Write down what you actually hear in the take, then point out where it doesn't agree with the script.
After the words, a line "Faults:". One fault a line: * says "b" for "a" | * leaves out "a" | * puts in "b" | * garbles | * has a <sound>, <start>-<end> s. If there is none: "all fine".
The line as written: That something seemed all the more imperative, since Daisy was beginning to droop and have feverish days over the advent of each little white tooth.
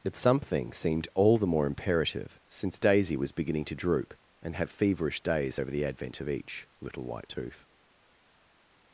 But something seemed all the more imperative, since Daisy was beginning to droop and have feverish days over the advent of each little white tooth.
Faults:
* says "But" for "That"